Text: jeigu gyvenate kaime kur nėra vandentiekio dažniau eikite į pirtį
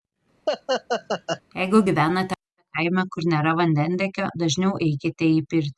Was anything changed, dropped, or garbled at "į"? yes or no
no